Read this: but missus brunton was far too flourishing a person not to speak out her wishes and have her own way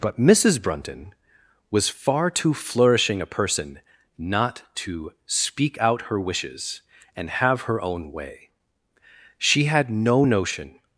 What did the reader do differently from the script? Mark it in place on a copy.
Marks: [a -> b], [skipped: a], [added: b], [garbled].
but missus brunton was far too flourishing a person not to speak out her wishes and have her own way [added: she had no notion]